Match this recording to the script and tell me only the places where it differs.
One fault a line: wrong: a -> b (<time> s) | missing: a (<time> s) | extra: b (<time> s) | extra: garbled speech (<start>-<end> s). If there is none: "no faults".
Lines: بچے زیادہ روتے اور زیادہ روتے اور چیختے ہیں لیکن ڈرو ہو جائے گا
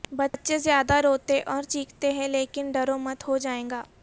missing: زیادہ روتے اور (1.6 s)
extra: مت (3.0 s)